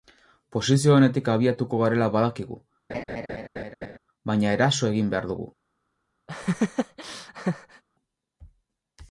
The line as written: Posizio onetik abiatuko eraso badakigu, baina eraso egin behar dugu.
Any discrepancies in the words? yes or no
yes